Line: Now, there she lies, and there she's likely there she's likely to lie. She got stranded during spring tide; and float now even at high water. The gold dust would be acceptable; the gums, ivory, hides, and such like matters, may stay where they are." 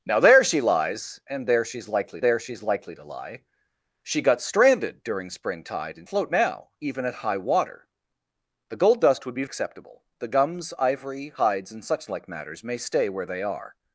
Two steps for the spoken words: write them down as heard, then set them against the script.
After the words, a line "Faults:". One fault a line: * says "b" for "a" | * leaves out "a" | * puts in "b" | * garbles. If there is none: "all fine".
Now, there she lies, and there she's likely there she's likely to lie. She got stranded during spring tide; and float now even at high water. The gold dust would be acceptable; the gums, ivory, hides, and such like matters, may stay where they are."
Faults:
all fine